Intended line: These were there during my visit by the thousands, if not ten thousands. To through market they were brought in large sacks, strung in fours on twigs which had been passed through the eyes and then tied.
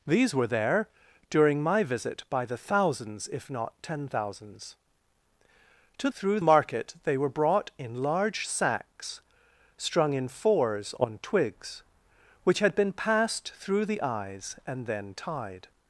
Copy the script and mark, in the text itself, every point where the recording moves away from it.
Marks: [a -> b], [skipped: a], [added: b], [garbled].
These were there during my visit by the thousands, if not ten thousands. To through market they were brought in large sacks, strung in fours on twigs which had been passed through the eyes and then tied.